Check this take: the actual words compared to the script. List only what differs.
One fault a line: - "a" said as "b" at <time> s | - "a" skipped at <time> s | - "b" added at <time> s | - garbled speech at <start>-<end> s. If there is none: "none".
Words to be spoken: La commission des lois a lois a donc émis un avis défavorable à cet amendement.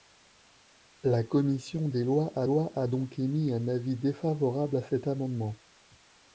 none